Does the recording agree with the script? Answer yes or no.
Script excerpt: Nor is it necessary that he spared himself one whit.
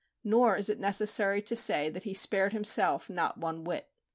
no